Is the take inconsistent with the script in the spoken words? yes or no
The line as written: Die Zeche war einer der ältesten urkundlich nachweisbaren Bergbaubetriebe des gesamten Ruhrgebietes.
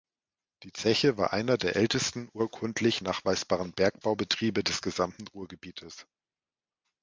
no